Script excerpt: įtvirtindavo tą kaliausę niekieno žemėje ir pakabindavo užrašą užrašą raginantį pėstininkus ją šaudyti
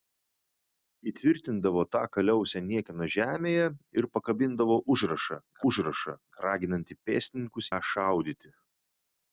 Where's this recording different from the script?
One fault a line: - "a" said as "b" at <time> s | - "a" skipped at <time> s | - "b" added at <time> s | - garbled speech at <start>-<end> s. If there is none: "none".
none